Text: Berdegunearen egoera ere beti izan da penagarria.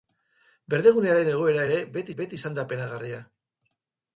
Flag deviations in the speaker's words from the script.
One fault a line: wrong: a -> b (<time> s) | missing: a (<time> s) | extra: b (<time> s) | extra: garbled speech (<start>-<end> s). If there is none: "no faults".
extra: beti (2.2 s)